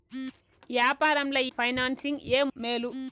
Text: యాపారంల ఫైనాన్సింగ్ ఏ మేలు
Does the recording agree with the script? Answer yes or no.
yes